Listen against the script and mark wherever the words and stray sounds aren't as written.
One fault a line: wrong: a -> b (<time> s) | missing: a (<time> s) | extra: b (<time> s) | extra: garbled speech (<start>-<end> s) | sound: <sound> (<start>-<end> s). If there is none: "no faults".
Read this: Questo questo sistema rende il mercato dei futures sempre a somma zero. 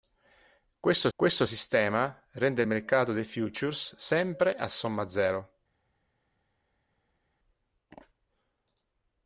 no faults